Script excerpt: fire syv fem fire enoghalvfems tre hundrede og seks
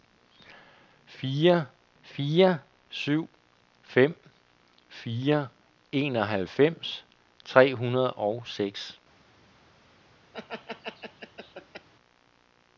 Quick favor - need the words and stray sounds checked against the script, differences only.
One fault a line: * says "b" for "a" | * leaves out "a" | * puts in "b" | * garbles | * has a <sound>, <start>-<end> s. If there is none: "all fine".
* puts in "fire"
* has a laugh, 10.3-11.9 s